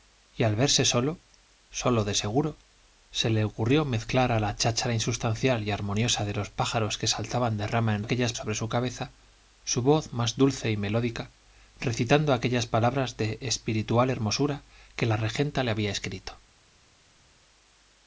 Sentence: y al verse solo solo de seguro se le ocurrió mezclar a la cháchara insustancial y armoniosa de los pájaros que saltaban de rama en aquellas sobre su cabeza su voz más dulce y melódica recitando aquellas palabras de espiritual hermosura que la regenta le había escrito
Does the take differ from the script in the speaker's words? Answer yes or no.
no